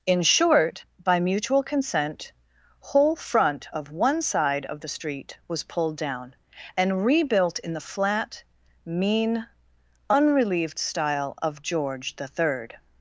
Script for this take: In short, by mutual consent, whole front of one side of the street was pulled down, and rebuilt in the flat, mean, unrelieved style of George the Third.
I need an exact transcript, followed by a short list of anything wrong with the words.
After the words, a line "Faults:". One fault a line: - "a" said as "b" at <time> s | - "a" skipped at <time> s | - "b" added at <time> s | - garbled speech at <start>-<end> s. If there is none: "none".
In short, by mutual consent, whole front of one side of the street was pulled down, and rebuilt in the flat, mean, unrelieved style of George the Third.
Faults:
none